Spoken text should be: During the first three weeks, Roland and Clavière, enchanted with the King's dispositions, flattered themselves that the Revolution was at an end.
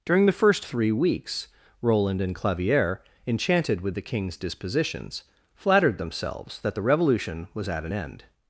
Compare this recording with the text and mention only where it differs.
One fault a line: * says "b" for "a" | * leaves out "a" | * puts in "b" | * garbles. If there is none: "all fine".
all fine